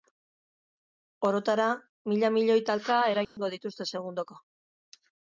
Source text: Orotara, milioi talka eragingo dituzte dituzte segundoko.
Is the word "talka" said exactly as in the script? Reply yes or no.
yes